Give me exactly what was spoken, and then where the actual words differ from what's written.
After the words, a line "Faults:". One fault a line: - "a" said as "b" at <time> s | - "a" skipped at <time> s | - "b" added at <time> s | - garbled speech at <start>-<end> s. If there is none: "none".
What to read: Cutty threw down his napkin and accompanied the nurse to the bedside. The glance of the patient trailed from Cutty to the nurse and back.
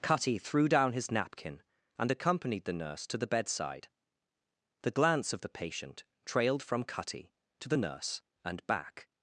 Cutty threw down his napkin and accompanied the nurse to the bedside. The glance of the patient trailed from Cutty to the nurse and back.
Faults:
none